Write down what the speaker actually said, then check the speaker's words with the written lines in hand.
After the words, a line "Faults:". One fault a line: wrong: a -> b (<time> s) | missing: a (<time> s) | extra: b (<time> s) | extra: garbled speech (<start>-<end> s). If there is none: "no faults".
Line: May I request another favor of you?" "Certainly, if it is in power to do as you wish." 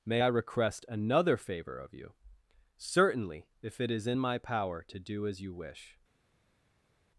May I request another favor of you?" "Certainly, if it is in my power to do as you wish."
Faults:
extra: my (4.2 s)